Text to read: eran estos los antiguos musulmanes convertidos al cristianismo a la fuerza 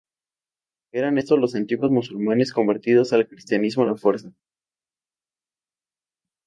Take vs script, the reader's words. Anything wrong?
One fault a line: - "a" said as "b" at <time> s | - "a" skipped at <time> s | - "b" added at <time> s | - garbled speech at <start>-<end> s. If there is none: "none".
none